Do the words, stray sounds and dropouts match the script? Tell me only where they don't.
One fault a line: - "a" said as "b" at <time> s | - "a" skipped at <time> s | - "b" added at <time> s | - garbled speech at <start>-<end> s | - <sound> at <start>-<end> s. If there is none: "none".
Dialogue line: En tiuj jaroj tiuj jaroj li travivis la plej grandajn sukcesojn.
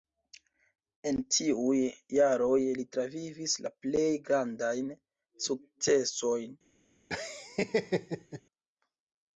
- "tiuj jaroj" skipped at 2.5 s
- laugh at 7.1-8.4 s